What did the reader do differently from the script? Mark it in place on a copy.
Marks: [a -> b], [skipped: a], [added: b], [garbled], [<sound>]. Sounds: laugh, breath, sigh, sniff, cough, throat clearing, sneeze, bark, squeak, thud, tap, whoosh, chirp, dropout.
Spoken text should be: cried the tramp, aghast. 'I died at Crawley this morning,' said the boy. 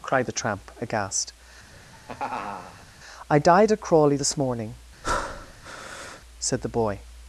cried the tramp, aghast. [laugh] 'I died at Crawley this morning,' [breath] said the boy.